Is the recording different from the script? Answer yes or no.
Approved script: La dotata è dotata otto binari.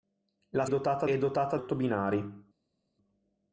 no